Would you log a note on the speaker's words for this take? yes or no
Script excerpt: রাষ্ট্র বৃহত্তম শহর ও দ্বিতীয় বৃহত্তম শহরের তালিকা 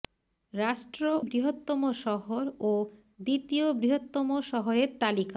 no